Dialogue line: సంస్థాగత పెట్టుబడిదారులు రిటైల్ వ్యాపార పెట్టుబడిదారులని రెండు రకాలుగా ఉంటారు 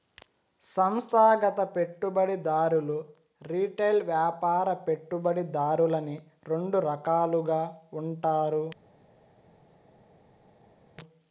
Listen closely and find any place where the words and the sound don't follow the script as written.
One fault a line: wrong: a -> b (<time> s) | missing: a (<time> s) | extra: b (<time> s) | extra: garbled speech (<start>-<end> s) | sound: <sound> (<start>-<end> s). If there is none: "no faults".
no faults